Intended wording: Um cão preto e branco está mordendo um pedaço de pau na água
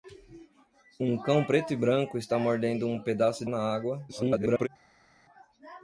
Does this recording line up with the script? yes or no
no